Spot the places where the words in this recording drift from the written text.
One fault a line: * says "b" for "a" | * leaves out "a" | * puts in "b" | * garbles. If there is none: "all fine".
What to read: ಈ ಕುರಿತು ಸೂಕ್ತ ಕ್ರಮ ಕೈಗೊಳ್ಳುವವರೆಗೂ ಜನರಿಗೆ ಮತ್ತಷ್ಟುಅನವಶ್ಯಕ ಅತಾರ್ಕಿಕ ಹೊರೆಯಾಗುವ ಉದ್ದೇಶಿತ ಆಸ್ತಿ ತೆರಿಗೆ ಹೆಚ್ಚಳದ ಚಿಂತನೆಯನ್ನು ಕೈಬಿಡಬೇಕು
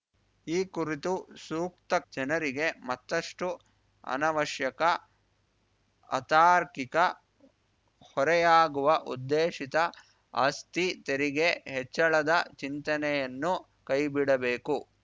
* leaves out "ಕ್ರಮ ಕೈಗೊಳ್ಳುವವರೆಗೂ"